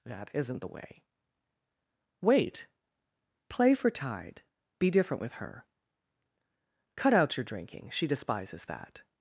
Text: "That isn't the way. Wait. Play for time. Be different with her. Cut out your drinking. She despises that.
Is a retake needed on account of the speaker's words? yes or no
yes